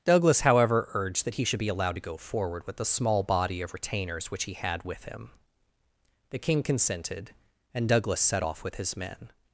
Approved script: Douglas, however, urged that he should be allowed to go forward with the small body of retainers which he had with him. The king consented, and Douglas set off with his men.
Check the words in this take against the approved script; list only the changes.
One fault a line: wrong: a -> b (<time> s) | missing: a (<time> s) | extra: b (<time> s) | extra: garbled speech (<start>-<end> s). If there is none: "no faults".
no faults